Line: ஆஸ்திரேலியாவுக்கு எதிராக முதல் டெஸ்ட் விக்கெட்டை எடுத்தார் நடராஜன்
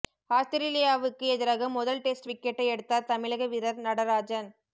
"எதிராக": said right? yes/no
yes